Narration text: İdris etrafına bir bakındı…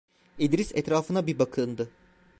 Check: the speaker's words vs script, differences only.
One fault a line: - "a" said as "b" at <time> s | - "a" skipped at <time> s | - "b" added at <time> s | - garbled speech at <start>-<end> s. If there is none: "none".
none